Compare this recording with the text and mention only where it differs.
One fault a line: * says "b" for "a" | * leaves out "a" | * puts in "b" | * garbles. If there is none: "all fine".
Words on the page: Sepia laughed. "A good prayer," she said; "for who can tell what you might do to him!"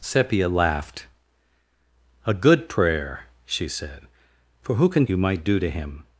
* leaves out "tell what"